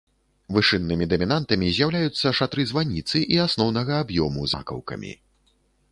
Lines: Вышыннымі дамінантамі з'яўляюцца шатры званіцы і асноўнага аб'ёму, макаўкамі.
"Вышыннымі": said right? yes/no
yes